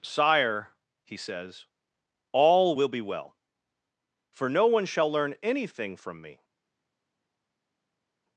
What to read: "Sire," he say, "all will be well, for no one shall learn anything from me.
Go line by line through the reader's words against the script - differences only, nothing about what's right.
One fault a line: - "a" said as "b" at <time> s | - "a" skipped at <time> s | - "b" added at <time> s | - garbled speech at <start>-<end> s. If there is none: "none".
- "say" said as "says" at 1.2 s